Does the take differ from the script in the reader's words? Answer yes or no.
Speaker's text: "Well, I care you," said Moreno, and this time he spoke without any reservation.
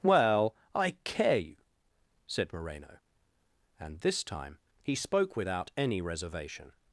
no